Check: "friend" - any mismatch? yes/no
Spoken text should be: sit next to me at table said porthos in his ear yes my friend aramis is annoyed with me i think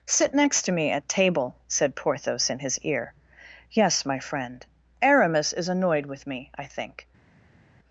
no